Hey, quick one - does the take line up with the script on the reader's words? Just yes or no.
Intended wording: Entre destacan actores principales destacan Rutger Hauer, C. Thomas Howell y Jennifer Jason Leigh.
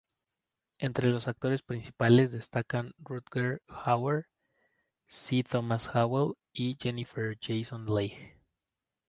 no